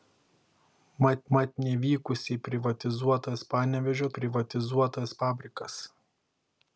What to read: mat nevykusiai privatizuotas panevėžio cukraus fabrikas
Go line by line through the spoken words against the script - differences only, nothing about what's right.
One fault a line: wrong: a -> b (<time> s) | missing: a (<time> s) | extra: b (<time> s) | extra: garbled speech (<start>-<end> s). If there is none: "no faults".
extra: mat (1.4 s)
wrong: cukraus -> privatizuotas (4.2 s)